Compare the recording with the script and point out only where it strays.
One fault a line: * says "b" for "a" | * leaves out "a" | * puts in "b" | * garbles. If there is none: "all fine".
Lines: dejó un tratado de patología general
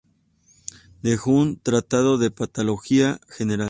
all fine